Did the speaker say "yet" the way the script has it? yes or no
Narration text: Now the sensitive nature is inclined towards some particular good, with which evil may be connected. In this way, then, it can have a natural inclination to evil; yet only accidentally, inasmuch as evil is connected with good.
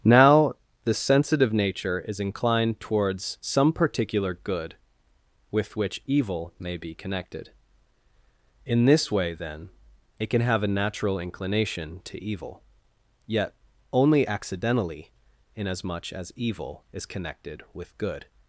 yes